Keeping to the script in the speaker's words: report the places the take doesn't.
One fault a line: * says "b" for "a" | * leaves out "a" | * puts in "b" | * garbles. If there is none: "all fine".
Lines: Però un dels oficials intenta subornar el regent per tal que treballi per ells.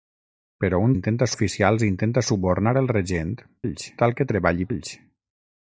* says "intenta" for "dels"
* says "ells" for "per"
* leaves out "per"